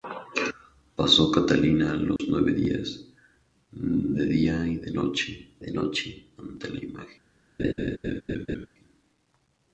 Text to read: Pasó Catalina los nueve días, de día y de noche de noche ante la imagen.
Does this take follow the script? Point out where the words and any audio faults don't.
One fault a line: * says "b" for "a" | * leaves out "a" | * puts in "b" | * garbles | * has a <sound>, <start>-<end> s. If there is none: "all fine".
* has a dropout, 2.2-2.2 s
* has a laugh, 7.6-8.7 s